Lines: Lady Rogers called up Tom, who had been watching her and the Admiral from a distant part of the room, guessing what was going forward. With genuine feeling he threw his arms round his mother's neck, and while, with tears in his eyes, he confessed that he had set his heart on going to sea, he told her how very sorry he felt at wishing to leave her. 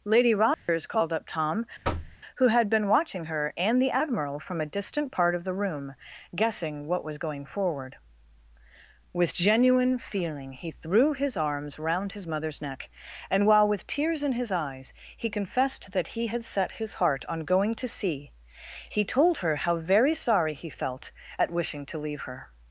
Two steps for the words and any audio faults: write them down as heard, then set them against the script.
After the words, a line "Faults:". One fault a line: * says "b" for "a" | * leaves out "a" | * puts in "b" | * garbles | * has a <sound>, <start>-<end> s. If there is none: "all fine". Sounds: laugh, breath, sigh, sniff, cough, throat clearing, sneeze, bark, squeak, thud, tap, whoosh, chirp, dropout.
Lady Rogers called up Tom, who had been watching her and the Admiral from a distant part of the room, guessing what was going forward. With genuine feeling he threw his arms round his mother's neck, and while, with tears in his eyes, he confessed that he had set his heart on going to sea, he told her how very sorry he felt at wishing to leave her.
Faults:
* has a dropout, 0.5-0.7 s
* has a thud, 1.8-2.2 s